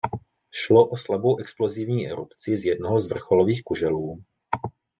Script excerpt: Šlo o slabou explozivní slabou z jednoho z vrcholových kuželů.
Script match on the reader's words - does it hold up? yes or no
no